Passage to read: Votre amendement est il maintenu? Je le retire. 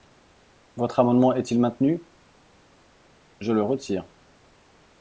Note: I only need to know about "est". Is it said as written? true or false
true